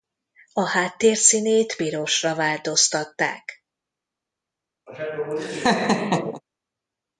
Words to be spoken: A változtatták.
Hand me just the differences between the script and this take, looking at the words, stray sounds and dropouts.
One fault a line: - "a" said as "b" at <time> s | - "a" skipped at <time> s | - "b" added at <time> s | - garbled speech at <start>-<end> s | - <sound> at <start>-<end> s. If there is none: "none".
- "háttér színét pirosra" added at 0.7 s
- laugh at 4.9-6.4 s